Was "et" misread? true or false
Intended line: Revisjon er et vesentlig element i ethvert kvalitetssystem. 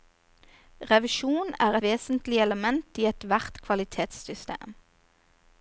true